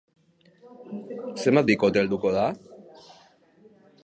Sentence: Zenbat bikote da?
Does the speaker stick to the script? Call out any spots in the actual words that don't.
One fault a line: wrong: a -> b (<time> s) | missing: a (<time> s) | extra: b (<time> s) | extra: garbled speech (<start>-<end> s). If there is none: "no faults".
extra: helduko (2.0 s)